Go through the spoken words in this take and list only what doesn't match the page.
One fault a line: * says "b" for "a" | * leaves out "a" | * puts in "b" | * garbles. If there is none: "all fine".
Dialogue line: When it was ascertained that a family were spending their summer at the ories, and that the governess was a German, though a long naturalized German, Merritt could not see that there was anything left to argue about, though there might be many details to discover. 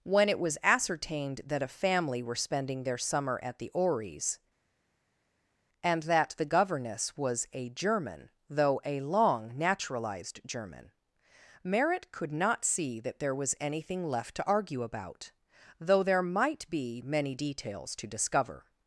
all fine